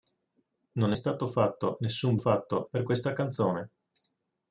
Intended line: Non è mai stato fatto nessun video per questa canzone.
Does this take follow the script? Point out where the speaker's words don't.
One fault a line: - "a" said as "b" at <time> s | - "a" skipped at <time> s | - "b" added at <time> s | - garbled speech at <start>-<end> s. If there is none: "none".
- "mai" skipped at 1.0 s
- "video" said as "fatto" at 2.1 s